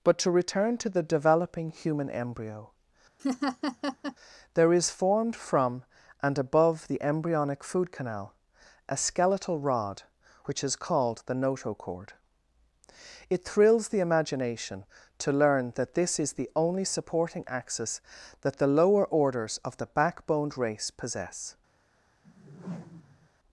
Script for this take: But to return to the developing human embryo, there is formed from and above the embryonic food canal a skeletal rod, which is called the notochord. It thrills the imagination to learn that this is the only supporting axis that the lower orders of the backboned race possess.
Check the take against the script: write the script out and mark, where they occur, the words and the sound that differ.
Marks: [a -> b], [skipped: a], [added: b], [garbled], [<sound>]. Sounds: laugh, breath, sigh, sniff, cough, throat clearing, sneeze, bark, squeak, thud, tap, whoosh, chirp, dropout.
But to return to the developing human embryo, [laugh] there is formed from and above the embryonic food canal a skeletal rod, which is called the notochord. It thrills the imagination to learn that this is the only supporting axis that the lower orders of the backboned race possess. [whoosh]